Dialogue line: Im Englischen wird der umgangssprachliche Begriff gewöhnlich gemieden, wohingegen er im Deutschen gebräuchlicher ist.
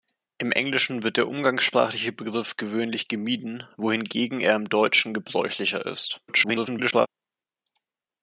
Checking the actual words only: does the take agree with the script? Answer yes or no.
no